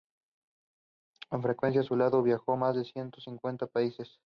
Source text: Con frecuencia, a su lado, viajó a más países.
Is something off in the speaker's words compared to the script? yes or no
yes